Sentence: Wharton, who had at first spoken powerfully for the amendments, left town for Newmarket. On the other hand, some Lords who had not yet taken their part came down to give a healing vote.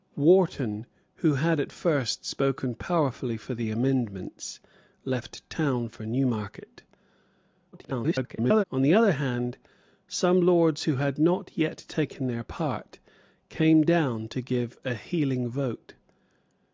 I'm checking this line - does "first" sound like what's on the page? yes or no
yes